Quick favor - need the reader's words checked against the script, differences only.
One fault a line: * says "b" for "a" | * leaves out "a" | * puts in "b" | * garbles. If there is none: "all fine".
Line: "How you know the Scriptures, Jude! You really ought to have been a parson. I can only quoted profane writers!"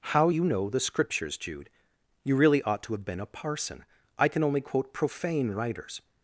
* says "quote" for "quoted"